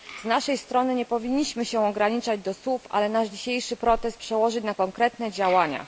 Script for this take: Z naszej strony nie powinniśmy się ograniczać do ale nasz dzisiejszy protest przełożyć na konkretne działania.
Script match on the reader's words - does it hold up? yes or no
no